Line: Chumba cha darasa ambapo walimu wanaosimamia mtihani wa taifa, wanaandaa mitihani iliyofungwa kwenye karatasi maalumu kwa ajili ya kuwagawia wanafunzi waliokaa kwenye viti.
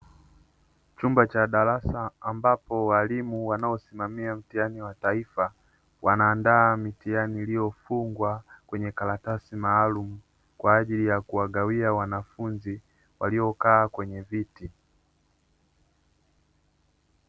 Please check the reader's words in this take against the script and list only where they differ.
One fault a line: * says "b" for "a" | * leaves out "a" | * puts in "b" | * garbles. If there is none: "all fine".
all fine